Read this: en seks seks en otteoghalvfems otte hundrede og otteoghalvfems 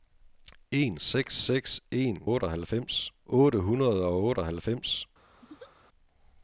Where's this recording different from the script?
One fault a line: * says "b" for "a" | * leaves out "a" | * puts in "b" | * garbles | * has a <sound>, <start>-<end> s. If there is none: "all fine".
* has a laugh, 5.4-5.7 s